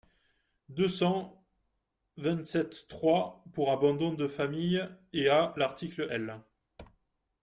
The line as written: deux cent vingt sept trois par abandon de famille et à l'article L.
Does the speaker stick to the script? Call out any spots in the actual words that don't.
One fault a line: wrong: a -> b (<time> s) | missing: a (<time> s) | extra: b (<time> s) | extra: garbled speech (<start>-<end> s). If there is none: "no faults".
wrong: par -> pour (3.5 s)